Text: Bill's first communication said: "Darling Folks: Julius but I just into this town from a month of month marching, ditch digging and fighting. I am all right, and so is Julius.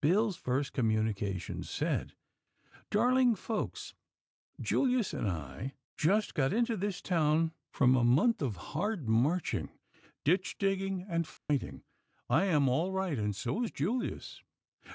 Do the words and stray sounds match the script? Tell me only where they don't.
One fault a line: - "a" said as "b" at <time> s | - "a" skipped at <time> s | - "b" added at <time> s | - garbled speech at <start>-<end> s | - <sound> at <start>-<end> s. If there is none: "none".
- "but" said as "and" at 5.1 s
- "got" added at 6.3 s
- "month" said as "hard" at 8.7 s
- dropout at 11.4-11.5 s